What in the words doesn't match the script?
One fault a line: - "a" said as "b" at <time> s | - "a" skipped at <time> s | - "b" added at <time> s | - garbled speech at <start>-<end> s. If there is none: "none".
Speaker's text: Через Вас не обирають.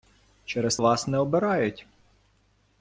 none